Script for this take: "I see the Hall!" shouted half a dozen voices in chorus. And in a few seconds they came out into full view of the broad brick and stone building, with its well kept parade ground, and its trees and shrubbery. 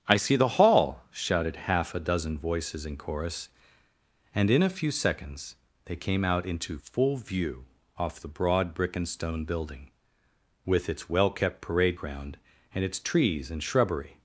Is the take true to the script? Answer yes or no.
no